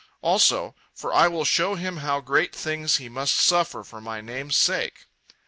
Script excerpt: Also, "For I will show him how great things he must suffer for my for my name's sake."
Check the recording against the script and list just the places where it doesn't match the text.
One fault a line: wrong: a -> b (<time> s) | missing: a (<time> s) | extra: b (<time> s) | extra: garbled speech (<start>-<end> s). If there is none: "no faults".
missing: for my (4.2 s)